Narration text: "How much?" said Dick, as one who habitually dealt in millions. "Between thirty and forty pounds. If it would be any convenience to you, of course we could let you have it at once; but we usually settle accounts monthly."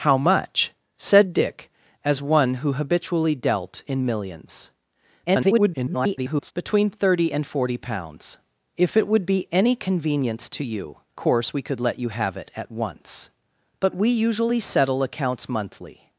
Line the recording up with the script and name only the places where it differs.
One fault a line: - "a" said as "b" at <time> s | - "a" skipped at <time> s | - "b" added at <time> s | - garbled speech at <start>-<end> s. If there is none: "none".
- garbled speech at 5.3-6.5 s
- "of" skipped at 11.0 s